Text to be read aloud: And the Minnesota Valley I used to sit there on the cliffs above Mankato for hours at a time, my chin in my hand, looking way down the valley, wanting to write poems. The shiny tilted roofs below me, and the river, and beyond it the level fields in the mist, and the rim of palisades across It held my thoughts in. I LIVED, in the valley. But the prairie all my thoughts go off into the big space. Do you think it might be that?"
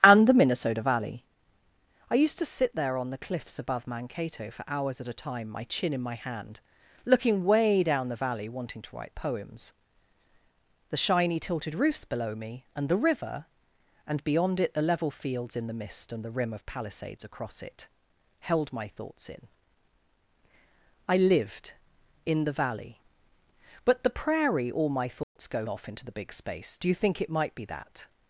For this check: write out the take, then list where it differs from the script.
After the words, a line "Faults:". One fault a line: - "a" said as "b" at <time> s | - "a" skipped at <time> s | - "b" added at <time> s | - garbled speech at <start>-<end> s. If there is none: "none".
And the Minnesota Valley I used to sit there on the cliffs above Mankato for hours at a time, my chin in my hand, looking way down the valley, wanting to write poems. The shiny tilted roofs below me, and the river, and beyond it the level fields in the mist, and the rim of palisades across It held my thoughts in. I LIVED, in the valley. But the prairie all my thoughts go off into the big space. Do you think it might be that?"
Faults:
none